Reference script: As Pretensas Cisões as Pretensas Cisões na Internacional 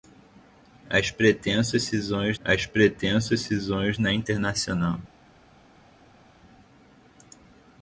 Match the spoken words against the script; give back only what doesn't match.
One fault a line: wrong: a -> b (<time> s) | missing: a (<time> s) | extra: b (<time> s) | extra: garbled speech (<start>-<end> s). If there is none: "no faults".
no faults